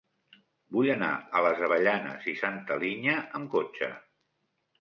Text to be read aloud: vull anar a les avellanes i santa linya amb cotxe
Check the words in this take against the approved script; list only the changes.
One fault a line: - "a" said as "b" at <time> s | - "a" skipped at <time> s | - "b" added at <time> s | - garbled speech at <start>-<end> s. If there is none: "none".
none